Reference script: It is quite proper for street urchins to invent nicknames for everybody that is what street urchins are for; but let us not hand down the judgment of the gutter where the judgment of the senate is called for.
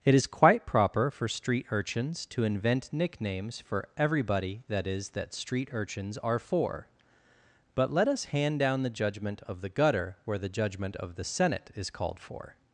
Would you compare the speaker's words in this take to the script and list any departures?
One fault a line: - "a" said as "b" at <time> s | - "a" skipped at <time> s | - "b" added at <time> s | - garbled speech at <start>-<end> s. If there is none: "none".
- "what" said as "that" at 5.1 s
- "not" skipped at 8.2 s